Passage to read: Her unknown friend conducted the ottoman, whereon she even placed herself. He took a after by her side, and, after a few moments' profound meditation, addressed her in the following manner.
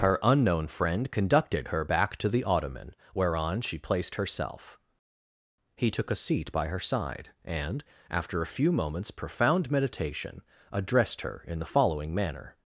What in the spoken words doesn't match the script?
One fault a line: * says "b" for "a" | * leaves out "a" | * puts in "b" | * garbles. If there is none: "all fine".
* puts in "her back to"
* leaves out "even"
* says "seat" for "after"